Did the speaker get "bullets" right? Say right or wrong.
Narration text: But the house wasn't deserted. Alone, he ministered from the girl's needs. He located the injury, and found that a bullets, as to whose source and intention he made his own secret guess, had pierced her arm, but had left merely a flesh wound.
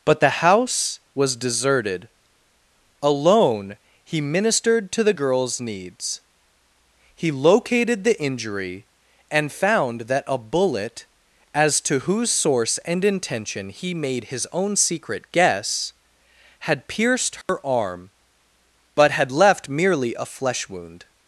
wrong